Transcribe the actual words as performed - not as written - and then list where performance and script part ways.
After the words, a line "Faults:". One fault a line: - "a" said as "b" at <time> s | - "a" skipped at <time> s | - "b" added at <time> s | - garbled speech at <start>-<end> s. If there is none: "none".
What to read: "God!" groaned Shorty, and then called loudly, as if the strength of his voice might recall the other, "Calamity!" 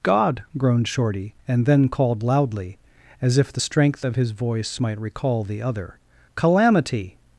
"God!" groaned Shorty, and then called loudly, as if the strength of his voice might recall the other, "Calamity!"
Faults:
none